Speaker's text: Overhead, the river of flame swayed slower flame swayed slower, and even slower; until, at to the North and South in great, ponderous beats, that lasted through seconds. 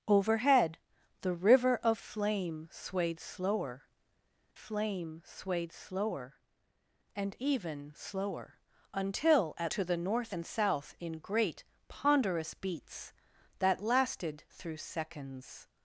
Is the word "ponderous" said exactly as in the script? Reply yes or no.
yes